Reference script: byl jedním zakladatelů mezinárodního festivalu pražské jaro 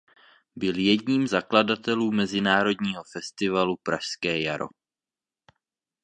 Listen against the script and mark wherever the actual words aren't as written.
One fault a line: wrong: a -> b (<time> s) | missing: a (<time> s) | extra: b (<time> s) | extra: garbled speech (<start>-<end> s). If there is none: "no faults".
no faults